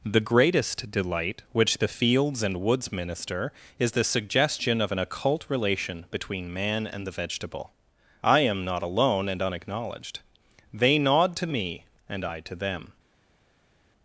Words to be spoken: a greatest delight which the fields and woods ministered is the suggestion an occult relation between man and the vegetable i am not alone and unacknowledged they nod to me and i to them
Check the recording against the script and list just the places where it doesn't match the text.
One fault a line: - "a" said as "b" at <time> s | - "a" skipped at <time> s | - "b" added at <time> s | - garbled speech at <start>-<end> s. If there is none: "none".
- "a" said as "the" at 0.0 s
- "ministered" said as "minister" at 2.9 s
- "of" added at 4.8 s